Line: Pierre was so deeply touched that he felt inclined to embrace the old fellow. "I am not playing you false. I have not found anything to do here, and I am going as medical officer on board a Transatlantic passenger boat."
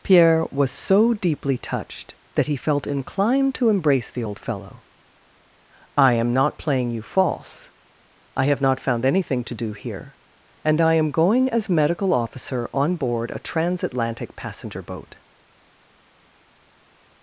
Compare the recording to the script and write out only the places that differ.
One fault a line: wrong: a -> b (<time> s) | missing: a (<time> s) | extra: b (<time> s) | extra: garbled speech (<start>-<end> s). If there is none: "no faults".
no faults